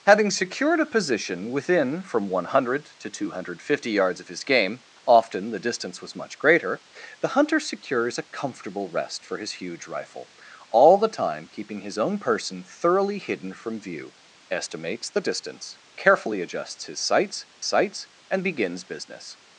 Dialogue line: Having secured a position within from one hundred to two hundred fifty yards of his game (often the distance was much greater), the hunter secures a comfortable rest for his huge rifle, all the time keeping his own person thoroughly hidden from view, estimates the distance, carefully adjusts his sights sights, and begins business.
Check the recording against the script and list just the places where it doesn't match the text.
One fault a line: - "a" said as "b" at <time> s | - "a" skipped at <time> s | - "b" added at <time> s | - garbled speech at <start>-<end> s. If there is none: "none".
none